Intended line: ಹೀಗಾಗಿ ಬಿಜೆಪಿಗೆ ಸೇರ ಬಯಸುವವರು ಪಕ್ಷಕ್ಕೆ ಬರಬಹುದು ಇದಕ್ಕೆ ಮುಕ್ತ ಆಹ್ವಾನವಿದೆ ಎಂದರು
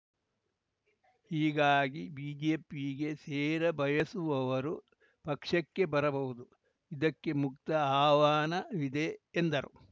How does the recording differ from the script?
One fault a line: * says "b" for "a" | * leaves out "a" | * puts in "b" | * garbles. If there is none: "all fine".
all fine